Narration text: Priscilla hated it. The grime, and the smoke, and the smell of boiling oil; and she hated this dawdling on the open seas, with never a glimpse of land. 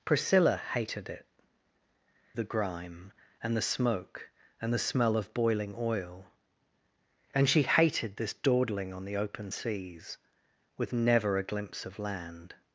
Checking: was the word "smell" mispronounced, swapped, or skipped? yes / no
no